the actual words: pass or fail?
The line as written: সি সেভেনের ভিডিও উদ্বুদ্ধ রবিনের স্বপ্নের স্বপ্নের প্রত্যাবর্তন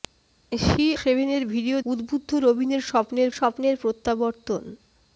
pass